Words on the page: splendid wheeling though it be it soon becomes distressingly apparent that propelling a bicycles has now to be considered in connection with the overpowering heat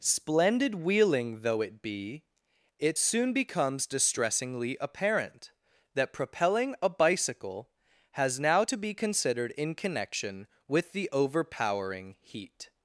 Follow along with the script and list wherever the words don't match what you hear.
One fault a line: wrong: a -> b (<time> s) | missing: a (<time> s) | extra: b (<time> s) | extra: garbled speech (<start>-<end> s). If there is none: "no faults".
wrong: bicycles -> bicycle (6.9 s)